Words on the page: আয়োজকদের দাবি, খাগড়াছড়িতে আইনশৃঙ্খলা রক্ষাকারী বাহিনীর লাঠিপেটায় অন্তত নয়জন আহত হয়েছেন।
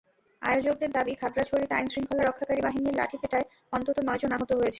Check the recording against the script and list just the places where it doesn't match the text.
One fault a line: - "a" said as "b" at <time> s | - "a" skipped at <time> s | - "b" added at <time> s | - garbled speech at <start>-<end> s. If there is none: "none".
none